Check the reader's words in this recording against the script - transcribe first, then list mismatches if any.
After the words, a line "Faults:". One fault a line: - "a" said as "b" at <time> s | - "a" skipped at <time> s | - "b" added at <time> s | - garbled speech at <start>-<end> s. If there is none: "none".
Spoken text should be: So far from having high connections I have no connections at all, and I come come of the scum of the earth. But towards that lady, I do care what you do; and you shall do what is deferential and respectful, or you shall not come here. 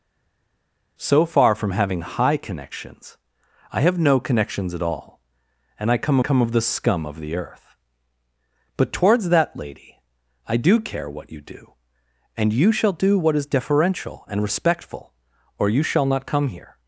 So far from having high connections I have no connections at all, and I come come of the scum of the earth. But towards that lady, I do care what you do; and you shall do what is deferential and respectful, or you shall not come here.
Faults:
none